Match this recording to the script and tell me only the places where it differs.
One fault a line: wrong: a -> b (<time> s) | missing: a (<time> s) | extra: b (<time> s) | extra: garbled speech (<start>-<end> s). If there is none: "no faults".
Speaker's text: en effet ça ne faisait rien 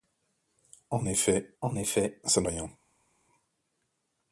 extra: en effet (1.6 s)
missing: faisait (2.5 s)